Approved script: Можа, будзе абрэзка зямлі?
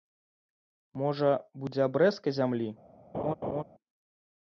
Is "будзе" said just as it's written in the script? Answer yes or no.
yes